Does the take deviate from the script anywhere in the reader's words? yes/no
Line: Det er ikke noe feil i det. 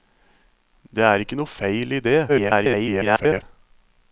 yes